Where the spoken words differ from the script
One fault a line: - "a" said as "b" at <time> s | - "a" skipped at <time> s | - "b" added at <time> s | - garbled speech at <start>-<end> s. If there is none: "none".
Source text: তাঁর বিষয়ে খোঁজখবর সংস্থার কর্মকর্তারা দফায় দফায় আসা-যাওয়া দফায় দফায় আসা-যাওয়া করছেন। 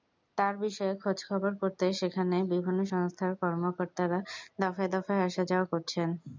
- "সংস্থার কর্মকর্তারা দফায় দফায় আসা-যাওয়া" said as "করতে সেখানে বিভিন্ন সংস্থার কর্মকর্তারা" at 1.6 s